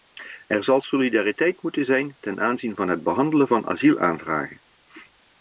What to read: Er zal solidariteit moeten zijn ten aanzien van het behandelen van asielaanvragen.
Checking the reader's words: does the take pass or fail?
pass